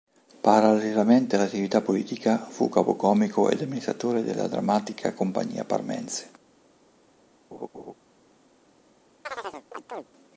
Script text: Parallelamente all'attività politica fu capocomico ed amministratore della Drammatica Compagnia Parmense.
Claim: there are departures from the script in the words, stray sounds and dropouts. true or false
true